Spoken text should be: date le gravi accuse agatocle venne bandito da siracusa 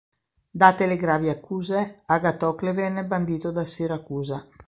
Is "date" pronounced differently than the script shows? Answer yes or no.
no